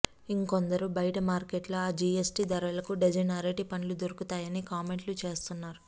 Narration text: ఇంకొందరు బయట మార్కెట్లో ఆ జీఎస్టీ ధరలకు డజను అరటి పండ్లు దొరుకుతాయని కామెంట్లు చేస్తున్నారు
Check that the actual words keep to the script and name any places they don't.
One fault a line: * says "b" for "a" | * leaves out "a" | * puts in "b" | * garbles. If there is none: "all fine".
all fine